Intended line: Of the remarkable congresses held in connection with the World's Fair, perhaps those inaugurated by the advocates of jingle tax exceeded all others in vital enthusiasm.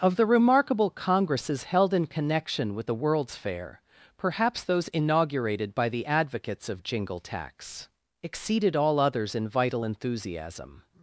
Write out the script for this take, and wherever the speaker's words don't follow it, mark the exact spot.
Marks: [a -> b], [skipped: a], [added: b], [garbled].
Of the remarkable congresses held in connection with the World's Fair, perhaps those inaugurated by the advocates of jingle tax exceeded all others in vital enthusiasm.